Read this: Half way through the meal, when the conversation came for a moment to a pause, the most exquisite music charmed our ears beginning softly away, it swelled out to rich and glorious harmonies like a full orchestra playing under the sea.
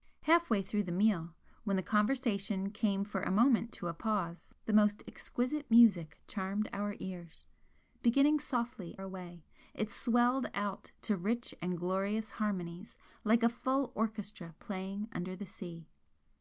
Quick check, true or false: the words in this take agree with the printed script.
true